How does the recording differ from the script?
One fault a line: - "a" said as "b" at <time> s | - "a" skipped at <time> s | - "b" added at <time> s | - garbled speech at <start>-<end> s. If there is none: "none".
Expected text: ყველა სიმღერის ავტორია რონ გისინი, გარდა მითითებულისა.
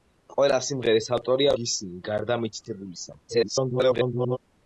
- "რონ" skipped at 1.5 s
- garbled speech at 3.3-4.4 s